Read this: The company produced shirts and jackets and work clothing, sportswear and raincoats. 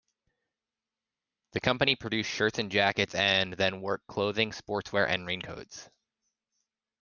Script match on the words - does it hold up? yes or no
no